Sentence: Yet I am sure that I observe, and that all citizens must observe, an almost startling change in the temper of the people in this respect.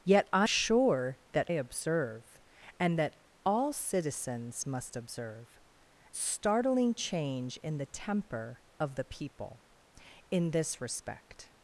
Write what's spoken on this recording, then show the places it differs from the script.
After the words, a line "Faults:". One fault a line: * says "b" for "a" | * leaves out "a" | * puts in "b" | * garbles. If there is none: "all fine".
Yet I sure that observe, and that all citizens must observe, startling change in the temper of the people in this respect.
Faults:
* leaves out "am"
* leaves out "I"
* leaves out "an almost"